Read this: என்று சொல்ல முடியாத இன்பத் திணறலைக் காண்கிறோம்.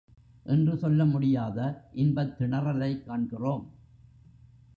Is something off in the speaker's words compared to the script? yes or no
no